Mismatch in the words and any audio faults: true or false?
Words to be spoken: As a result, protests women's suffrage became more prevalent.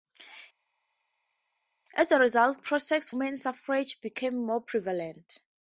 false